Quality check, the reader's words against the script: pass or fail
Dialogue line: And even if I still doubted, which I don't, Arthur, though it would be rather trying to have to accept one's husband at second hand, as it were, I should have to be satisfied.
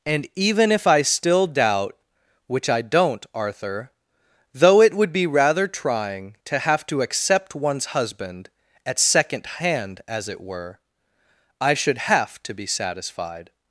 fail